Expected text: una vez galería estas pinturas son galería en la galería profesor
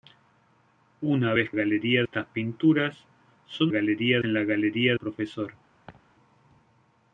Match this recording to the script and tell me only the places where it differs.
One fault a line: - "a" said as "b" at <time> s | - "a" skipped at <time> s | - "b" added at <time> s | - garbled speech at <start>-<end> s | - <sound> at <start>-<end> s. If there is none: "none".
- laugh at 5.9-6.0 s